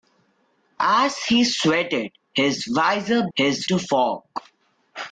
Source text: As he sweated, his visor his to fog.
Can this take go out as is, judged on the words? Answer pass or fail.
pass